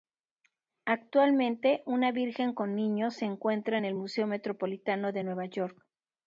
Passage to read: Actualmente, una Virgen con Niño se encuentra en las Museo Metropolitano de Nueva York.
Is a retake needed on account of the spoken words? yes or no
yes